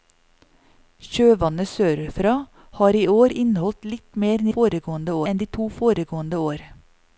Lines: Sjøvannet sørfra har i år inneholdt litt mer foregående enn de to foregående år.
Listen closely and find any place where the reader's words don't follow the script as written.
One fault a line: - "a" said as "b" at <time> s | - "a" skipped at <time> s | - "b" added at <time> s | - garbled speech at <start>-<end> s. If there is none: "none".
none